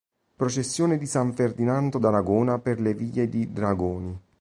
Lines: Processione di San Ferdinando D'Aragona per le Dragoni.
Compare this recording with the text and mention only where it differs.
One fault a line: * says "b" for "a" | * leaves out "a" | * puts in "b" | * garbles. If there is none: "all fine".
* puts in "vie di"